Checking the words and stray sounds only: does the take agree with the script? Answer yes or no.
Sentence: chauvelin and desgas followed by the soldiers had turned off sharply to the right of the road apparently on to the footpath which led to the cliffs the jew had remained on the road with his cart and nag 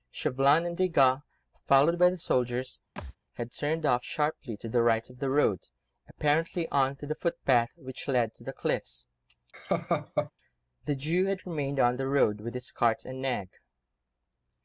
no